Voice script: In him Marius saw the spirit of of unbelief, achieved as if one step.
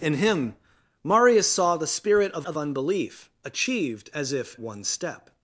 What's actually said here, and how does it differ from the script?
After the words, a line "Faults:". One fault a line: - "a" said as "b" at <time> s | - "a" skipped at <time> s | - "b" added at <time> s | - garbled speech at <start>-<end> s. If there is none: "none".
In him Marius saw the spirit of of unbelief, achieved as if one step.
Faults:
none